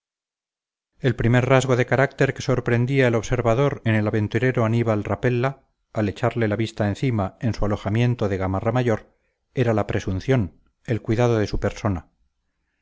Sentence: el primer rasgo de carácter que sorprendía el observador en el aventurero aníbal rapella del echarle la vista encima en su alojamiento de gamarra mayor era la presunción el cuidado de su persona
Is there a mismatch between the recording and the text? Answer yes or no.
yes